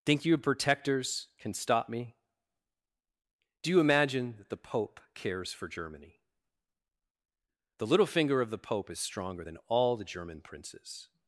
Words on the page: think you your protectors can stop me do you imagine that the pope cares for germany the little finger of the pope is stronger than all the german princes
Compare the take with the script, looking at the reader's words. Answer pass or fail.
fail